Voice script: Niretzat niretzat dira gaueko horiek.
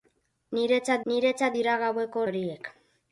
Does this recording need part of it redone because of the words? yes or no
no